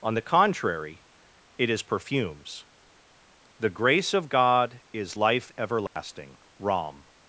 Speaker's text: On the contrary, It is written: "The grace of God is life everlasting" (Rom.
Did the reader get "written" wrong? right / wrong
wrong